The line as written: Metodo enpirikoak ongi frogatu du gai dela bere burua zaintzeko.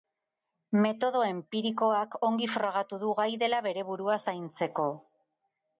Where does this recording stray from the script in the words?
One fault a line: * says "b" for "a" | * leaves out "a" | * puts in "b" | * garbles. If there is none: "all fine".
all fine